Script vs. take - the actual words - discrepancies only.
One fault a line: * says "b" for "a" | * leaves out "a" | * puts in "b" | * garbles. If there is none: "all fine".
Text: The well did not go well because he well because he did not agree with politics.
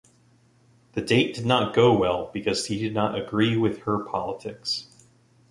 * says "date" for "well"
* leaves out "well because he"
* puts in "her"